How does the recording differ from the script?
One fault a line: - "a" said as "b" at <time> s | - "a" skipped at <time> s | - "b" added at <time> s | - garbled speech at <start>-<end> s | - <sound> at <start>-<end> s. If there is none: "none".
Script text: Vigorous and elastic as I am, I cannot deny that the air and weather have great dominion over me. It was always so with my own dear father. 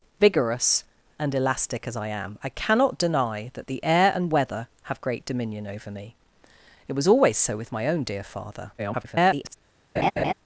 - garbled speech at 8.8-9.6 s
- laugh at 10.0-10.3 s